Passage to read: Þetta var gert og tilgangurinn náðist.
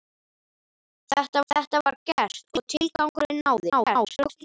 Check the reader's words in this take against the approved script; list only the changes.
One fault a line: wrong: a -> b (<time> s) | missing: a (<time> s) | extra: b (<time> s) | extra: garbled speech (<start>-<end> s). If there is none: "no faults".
extra: þetta (1.5 s)
extra: garbled speech (3.7-4.4 s)